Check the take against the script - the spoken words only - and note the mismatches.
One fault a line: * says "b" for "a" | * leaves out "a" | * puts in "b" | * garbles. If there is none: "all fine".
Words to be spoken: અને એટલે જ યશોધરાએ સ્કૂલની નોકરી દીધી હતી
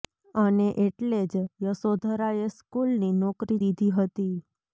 all fine